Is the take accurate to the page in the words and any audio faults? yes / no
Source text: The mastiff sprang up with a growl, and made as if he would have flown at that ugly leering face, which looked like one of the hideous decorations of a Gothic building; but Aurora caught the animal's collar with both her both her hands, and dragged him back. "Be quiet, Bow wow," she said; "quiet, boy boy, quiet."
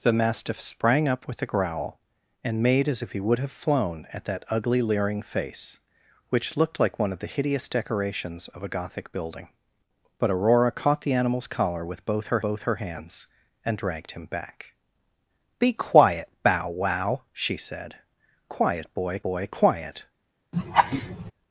no